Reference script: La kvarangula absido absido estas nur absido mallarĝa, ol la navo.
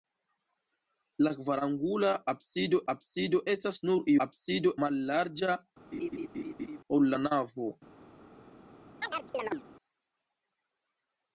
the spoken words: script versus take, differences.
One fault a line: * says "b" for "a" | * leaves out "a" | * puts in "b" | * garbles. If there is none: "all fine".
all fine